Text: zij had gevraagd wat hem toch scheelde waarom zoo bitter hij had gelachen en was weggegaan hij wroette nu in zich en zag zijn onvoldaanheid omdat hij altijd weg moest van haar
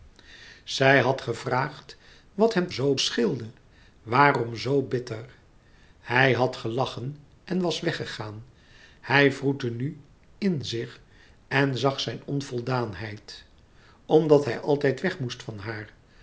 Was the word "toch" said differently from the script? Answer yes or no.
yes